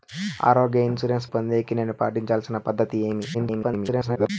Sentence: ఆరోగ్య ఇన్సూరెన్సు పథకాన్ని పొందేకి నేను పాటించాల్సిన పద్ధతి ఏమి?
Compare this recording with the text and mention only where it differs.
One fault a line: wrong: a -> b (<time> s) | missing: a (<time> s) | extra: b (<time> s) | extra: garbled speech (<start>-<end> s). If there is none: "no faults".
missing: పథకాన్ని (1.3 s)
extra: garbled speech (3.3-4.3 s)